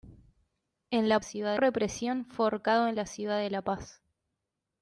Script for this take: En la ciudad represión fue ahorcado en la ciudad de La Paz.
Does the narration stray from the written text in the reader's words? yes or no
no